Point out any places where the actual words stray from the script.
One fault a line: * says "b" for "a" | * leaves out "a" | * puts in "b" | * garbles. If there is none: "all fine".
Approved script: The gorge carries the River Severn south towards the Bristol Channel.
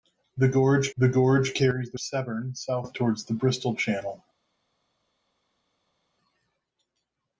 * puts in "the gorge"
* leaves out "River"